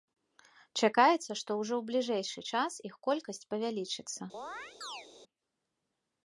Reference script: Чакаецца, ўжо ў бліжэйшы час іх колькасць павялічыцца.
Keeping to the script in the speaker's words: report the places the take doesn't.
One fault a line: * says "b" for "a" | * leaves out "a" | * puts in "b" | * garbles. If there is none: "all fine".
* puts in "што"